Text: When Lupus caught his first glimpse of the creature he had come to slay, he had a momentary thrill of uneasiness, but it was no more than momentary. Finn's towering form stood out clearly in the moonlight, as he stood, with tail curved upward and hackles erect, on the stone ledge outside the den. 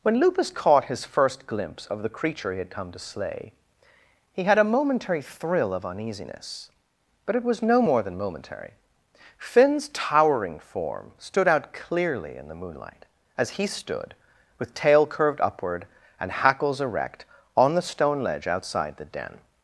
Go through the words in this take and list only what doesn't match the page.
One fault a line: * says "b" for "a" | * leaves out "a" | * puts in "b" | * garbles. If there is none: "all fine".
all fine